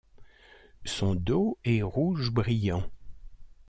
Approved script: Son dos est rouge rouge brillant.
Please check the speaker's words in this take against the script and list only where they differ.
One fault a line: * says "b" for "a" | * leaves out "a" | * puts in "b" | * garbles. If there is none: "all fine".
* leaves out "rouge"